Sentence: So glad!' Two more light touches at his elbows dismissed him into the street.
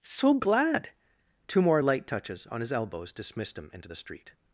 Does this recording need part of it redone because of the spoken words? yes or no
yes